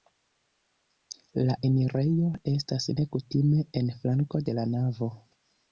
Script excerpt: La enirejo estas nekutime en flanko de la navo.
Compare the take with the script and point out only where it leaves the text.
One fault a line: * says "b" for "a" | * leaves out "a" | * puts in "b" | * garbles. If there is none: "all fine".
all fine